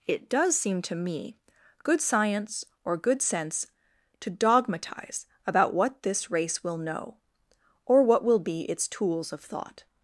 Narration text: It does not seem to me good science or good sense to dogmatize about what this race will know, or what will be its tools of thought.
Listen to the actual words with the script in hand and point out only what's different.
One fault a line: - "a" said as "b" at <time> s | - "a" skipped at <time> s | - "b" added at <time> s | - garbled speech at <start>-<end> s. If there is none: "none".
- "not" skipped at 0.6 s